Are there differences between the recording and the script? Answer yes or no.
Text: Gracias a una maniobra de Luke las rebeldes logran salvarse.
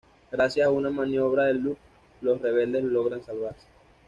yes